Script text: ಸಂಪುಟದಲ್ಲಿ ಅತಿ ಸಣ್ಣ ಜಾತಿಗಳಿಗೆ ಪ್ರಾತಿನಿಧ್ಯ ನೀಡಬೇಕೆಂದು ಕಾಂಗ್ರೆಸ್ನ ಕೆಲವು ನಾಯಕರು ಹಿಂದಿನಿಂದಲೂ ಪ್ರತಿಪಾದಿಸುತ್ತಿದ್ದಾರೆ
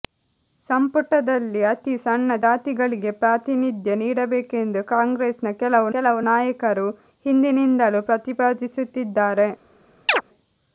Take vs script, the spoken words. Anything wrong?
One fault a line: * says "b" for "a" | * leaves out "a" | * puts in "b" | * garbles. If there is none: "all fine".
* puts in "ಕೆಲವು"